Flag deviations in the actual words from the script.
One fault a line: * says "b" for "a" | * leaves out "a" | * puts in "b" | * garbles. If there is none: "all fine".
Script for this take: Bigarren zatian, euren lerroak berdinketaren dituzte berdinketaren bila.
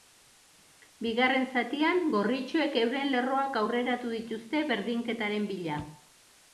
* puts in "gorritxoek"
* says "aurreratu" for "berdinketaren"